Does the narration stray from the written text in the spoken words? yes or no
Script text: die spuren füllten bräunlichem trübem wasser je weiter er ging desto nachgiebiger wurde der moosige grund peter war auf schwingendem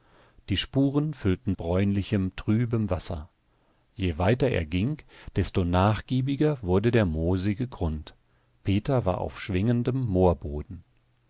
no